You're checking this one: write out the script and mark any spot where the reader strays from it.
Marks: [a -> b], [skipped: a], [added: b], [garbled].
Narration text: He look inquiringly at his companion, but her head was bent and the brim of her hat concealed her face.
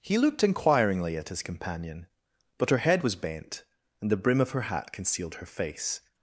He [look -> looked] inquiringly at his companion, but her head was bent and the brim of her hat concealed her face.